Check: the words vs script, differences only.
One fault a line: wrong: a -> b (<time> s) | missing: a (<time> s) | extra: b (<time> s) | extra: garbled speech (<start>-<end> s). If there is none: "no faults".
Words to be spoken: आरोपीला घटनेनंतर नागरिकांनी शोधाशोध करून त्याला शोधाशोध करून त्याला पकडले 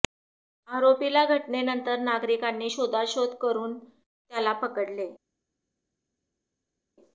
missing: शोधाशोध करून त्याला (4.5 s)